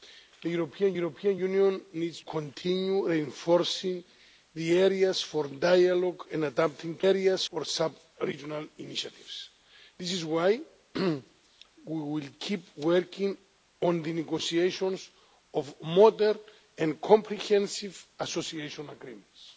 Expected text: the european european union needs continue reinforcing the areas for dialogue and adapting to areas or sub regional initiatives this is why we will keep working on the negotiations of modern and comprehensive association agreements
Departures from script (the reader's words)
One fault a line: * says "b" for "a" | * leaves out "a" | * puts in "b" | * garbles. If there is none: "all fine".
all fine